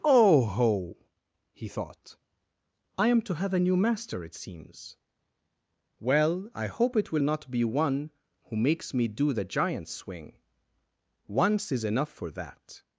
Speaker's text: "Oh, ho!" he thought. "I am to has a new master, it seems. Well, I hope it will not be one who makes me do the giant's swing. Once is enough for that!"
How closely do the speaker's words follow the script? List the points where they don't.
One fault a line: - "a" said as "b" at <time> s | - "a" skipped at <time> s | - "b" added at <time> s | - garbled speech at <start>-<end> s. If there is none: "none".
- "has" said as "have" at 3.3 s